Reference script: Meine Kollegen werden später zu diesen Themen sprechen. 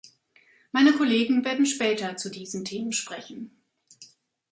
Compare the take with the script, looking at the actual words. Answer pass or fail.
pass